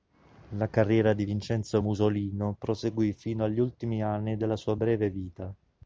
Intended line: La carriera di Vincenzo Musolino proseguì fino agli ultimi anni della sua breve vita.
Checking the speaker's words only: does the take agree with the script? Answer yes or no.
yes